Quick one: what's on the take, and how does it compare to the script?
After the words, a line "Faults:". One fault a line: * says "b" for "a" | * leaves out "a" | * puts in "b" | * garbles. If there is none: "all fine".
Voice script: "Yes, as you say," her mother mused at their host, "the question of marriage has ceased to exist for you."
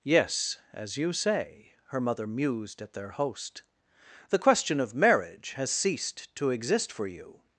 "Yes, as you say," her mother mused at their host, "the question of marriage has ceased to exist for you."
Faults:
all fine